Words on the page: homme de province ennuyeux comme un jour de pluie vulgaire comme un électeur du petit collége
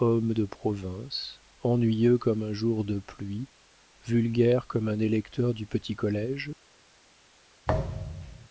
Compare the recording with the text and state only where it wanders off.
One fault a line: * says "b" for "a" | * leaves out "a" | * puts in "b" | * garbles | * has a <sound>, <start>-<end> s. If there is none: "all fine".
* has a thud, 7.7-8.5 s